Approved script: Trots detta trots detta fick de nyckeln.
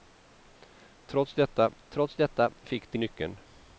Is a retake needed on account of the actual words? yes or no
no